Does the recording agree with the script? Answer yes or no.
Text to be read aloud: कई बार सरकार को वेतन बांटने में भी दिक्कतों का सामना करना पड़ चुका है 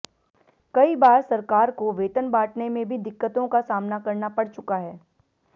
yes